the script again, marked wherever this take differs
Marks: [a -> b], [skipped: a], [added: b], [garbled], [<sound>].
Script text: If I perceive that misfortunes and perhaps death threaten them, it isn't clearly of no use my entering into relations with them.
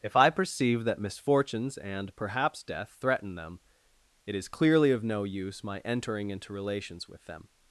If I perceive that misfortunes and perhaps death threaten them, it [isn't -> is] clearly of no use my entering into relations with them.